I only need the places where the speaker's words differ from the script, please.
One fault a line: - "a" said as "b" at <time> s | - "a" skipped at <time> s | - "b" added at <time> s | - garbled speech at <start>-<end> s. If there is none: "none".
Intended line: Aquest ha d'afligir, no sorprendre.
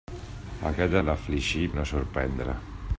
none